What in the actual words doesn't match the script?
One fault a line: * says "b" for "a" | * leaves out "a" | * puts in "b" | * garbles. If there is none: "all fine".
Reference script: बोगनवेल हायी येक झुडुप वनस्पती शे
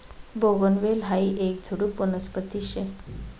all fine